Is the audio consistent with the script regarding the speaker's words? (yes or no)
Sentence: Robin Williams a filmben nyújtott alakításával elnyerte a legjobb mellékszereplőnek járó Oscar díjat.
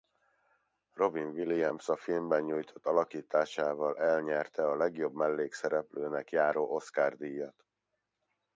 yes